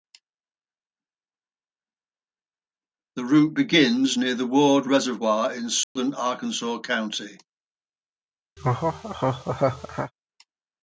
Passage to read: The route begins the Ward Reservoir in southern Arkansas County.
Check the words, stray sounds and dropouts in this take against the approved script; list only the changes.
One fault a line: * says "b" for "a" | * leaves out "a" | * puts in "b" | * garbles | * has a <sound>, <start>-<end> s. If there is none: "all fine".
* puts in "near"
* has a dropout, 5.8-6.0 s
* has a laugh, 8.6-10.1 s